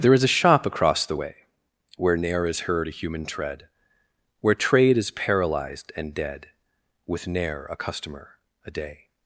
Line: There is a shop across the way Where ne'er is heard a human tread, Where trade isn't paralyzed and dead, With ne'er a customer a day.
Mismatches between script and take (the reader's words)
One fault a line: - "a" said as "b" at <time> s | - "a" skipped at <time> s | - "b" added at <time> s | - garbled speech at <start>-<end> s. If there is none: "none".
- "isn't" said as "is" at 5.0 s